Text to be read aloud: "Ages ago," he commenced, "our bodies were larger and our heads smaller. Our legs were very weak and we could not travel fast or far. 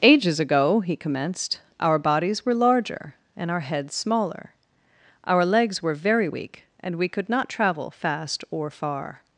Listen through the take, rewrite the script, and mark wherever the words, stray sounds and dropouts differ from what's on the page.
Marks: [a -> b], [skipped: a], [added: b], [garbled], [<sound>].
"Ages ago," he commenced, "our bodies were larger and our heads smaller. Our legs were very weak and we could not travel fast or far.